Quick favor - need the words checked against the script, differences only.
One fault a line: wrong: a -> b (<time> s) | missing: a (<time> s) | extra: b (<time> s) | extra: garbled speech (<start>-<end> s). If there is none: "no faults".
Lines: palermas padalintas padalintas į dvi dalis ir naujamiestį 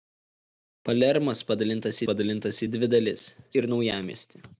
no faults